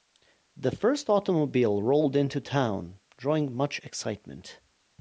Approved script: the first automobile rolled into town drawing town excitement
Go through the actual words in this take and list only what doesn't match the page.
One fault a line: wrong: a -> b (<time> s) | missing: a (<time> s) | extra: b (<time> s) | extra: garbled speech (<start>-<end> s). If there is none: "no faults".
wrong: town -> much (3.5 s)